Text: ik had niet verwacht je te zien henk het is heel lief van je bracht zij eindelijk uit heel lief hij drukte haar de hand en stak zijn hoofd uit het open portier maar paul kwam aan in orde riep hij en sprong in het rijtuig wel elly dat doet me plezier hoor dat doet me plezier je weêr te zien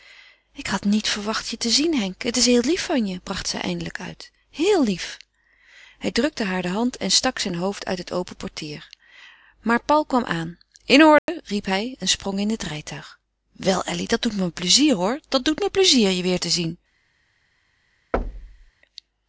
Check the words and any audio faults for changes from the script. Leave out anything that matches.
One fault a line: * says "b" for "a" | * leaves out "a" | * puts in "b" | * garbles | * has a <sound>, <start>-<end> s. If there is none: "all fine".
* has a dropout, 11.2-11.3 s
* has a thud, 18.1-18.7 s